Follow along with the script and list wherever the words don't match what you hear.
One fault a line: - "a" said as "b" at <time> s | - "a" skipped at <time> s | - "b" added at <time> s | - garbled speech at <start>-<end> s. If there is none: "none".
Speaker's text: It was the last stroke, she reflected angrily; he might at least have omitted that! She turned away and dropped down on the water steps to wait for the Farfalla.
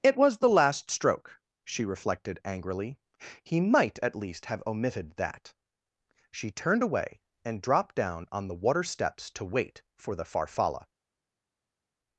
none